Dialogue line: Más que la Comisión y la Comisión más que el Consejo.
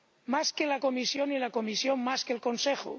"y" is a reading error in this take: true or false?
false